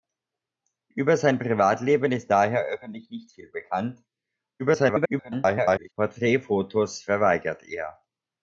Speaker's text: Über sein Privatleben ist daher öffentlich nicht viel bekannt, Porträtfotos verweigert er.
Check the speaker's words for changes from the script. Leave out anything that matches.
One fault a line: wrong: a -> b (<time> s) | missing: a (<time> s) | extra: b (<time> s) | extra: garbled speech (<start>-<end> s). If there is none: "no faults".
extra: garbled speech (4.6-5.9 s)